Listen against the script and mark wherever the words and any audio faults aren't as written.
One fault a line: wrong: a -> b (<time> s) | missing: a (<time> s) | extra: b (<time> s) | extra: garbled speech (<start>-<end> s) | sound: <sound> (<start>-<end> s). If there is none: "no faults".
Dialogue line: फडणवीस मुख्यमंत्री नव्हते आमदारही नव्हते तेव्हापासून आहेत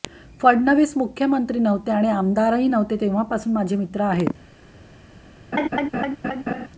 extra: आणि (1.9 s)
extra: माझे मित्र (3.5 s)
sound: laugh (5.5-6.7 s)